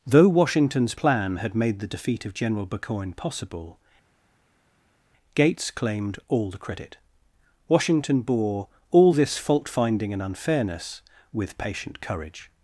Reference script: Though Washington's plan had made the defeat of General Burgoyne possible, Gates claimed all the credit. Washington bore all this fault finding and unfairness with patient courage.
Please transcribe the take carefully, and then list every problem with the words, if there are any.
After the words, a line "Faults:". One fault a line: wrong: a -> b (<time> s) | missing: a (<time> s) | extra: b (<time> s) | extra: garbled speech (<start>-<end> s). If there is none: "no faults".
Though Washington's plan had made the defeat of General Burgoyne possible, Gates claimed all the credit. Washington bore all this fault finding and unfairness with patient courage.
Faults:
no faults